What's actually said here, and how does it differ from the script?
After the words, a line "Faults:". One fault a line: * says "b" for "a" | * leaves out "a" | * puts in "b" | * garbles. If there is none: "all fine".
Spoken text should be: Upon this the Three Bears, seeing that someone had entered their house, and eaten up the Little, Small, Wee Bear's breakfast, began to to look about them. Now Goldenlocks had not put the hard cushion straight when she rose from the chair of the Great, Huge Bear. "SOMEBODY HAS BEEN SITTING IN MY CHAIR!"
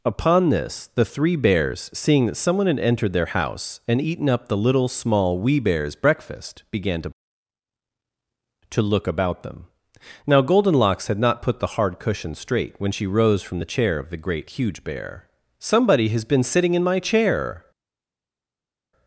Upon this the Three Bears, seeing that someone had entered their house, and eaten up the Little, Small, Wee Bear's breakfast, began to to look about them. Now Goldenlocks had not put the hard cushion straight when she rose from the chair of the Great, Huge Bear. "SOMEBODY HAS BEEN SITTING IN MY CHAIR!"
Faults:
all fine